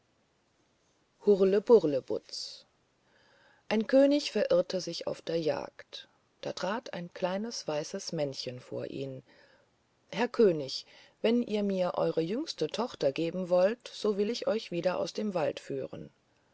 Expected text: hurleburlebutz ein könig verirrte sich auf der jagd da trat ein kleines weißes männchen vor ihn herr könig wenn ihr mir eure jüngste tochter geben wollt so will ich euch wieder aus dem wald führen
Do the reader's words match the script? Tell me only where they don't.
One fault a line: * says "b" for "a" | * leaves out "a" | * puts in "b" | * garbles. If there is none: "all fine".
all fine